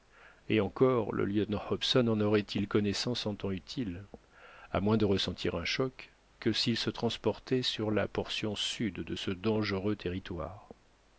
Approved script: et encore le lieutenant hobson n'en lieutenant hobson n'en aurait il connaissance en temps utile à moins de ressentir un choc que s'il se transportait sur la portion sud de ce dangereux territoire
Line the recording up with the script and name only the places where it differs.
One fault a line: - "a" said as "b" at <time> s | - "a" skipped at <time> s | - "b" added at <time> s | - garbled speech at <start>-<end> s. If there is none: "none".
- "lieutenant hobson n'en" skipped at 2.2 s